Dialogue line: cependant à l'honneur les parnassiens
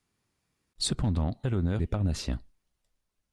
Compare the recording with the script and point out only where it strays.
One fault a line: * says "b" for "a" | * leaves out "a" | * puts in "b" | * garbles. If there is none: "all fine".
all fine